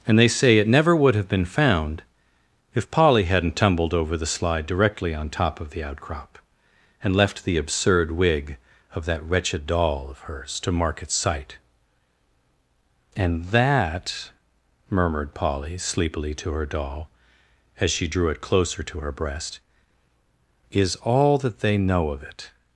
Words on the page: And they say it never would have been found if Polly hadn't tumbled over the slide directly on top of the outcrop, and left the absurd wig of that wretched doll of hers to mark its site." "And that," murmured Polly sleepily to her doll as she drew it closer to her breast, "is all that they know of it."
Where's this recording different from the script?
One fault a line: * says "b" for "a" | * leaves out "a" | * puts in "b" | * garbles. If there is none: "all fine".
all fine